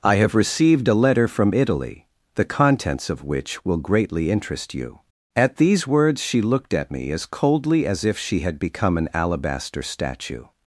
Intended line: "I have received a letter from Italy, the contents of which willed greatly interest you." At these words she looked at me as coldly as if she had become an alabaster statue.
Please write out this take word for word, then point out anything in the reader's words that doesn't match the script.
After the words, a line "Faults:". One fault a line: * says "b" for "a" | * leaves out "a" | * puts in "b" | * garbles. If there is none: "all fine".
"I have received a letter from Italy, the contents of which will greatly interest you." At these words she looked at me as coldly as if she had become an alabaster statue.
Faults:
* says "will" for "willed"